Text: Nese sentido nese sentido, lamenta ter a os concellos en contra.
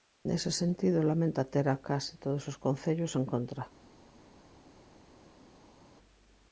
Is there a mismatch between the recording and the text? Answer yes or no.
yes